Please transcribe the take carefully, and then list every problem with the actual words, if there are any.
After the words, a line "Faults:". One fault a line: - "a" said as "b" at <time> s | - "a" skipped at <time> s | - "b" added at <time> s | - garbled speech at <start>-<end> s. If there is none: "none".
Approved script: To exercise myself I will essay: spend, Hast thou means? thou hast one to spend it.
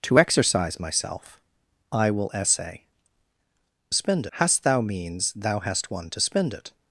To exercise myself I will essay: spend, Hast thou means? thou hast one to spend it.
Faults:
none